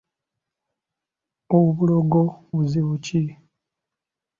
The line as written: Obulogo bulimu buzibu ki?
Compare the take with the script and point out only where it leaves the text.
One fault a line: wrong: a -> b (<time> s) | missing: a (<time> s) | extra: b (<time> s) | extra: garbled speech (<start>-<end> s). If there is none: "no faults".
missing: bulimu (2.2 s)